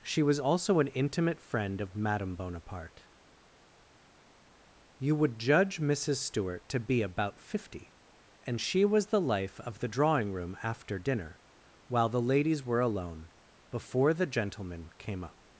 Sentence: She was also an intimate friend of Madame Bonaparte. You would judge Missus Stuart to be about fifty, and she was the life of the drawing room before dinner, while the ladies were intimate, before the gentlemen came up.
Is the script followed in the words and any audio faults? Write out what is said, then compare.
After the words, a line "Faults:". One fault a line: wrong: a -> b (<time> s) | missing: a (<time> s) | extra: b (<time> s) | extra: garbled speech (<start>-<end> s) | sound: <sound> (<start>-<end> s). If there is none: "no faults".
She was also an intimate friend of Madame Bonaparte. You would judge Missus Stuart to be about fifty, and she was the life of the drawing room after dinner, while the ladies were alone, before the gentlemen came up.
Faults:
wrong: before -> after (10.6 s)
wrong: intimate -> alone (12.8 s)